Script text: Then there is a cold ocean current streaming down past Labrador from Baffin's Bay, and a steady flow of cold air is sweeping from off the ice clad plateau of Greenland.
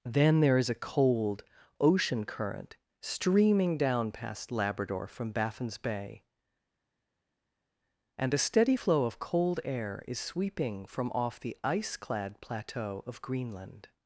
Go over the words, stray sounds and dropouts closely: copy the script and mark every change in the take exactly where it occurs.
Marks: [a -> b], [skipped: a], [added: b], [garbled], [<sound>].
Then there is a cold ocean current streaming down past Labrador from Baffin's Bay, and a steady flow of cold air is sweeping from off the ice clad plateau of Greenland.